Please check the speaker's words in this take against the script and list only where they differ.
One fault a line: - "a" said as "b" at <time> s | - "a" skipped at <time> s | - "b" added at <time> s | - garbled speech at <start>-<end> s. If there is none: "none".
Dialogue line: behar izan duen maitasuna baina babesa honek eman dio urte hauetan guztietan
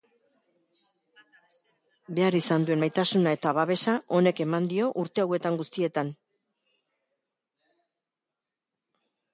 - "baina" said as "eta" at 3.4 s